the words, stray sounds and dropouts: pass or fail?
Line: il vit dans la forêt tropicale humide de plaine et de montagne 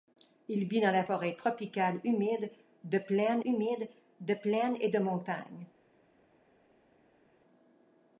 fail